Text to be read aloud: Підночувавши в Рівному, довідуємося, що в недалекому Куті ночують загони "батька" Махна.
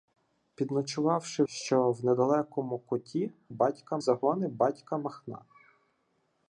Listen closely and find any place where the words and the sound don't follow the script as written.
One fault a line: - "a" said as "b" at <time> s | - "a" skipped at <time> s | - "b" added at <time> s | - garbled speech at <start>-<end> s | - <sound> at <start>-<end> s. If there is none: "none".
- "в Рівному довідуємося" skipped at 1.4 s
- "ночують" said as "батька" at 3.5 s